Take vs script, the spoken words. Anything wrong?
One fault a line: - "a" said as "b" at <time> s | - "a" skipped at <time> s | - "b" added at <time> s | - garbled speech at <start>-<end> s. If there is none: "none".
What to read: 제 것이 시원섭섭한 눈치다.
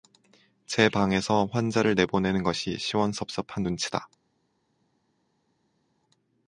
- "방에서 환자를 내보내는" added at 0.9 s